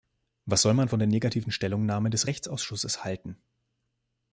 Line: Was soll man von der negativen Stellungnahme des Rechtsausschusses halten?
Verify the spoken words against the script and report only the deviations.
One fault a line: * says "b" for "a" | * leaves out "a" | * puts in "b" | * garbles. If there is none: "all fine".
all fine